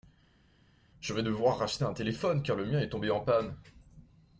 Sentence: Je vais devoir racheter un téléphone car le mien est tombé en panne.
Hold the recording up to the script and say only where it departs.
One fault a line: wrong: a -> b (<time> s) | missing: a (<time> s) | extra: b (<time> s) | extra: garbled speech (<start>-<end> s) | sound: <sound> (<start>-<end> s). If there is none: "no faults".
no faults